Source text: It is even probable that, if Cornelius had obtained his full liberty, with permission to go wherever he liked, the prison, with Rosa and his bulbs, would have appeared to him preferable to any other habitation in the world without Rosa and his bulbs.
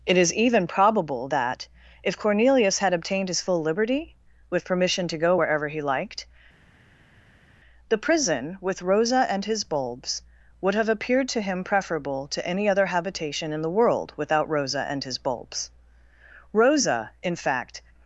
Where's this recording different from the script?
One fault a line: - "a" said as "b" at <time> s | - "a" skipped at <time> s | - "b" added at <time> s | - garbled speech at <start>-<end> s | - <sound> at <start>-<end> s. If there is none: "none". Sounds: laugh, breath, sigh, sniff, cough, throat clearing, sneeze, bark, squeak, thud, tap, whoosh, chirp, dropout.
- "Rosa in fact" added at 16.5 s